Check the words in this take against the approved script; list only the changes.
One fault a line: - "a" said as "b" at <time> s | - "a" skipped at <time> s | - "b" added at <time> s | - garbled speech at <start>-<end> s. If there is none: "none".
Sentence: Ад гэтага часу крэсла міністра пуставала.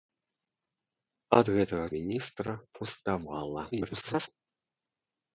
- "часу крэсла" skipped at 1.9 s
- garbled speech at 3.7-4.3 s